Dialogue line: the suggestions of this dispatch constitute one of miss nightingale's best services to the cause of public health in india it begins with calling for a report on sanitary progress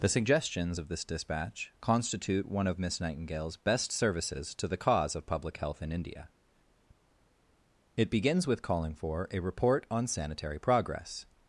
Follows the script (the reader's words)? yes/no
yes